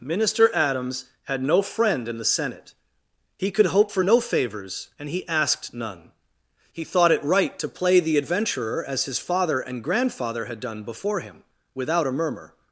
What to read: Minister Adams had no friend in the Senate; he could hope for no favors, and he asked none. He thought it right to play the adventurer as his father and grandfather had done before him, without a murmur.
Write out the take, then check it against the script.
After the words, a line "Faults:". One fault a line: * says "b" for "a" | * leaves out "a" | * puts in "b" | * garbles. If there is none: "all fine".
Minister Adams had no friend in the Senate; he could hope for no favors, and he asked none. He thought it right to play the adventurer as his father and grandfather had done before him, without a murmur.
Faults:
all fine